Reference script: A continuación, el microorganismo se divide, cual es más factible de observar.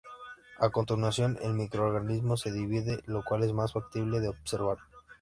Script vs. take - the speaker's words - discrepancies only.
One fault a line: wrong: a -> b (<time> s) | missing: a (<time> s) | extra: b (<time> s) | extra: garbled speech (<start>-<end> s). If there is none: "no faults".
extra: lo (3.0 s)